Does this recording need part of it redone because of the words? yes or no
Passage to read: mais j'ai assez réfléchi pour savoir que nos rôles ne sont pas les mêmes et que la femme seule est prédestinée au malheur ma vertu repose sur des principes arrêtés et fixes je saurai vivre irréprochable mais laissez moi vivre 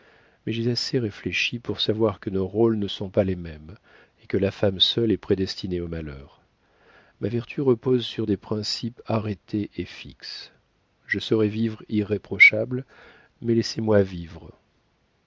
no